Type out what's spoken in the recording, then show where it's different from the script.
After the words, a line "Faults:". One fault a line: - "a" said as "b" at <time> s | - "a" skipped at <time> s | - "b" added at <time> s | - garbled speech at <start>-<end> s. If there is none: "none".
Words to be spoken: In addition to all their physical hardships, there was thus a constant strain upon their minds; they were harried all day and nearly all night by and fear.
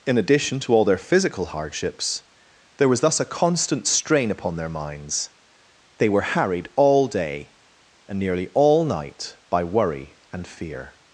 In addition to all their physical hardships, there was thus a constant strain upon their minds; they were harried all day and nearly all night by worry and fear.
Faults:
- "worry" added at 9.6 s